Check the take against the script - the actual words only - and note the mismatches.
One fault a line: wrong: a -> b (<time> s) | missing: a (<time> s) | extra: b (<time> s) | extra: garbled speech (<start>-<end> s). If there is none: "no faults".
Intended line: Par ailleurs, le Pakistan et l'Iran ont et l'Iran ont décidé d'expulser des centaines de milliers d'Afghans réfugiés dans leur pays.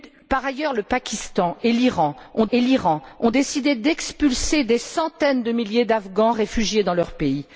no faults